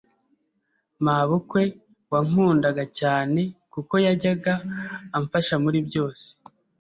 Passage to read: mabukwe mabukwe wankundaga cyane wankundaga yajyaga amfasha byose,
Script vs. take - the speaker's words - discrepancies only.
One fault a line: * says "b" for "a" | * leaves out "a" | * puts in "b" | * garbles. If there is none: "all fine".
* leaves out "mabukwe"
* says "kuko" for "wankundaga"
* puts in "muri"